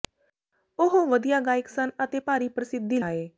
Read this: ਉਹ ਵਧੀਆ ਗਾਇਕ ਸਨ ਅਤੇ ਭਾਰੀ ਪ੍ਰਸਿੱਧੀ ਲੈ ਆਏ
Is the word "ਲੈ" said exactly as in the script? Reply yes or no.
no